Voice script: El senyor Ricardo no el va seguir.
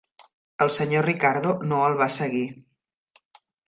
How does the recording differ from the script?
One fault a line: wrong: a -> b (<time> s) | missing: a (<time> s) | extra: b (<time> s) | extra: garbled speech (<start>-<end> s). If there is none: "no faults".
no faults